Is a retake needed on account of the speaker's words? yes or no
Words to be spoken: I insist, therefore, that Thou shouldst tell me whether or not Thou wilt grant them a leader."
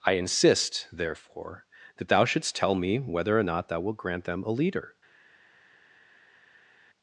no